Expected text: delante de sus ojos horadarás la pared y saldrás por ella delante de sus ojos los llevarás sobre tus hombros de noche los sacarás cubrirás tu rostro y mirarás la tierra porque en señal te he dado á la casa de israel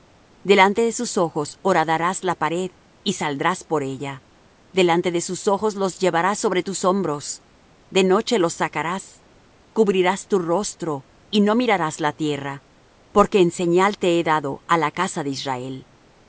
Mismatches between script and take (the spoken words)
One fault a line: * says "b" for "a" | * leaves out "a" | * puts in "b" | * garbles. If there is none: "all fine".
* puts in "no"